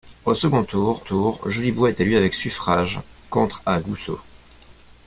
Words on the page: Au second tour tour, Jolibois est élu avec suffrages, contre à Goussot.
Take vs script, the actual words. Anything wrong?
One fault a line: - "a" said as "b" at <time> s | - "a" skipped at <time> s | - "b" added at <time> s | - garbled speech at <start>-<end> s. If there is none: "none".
none